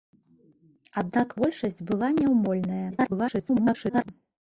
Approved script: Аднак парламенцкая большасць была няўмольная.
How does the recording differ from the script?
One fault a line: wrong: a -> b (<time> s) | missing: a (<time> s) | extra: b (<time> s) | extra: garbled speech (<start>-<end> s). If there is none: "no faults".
missing: парламенцкая (1.4 s)
extra: garbled speech (2.9-4.1 s)